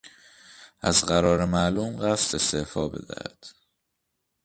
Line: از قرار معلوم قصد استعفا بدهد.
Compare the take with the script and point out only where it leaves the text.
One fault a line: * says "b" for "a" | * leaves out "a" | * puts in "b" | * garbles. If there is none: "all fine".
all fine